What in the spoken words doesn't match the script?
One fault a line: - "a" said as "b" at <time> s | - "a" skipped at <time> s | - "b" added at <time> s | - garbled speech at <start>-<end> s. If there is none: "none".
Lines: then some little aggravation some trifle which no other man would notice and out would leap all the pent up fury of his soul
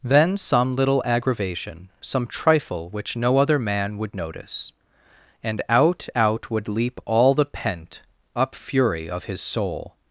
- "out" added at 6.1 s